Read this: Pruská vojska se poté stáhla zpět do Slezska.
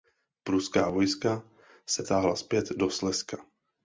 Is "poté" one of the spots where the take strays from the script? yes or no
yes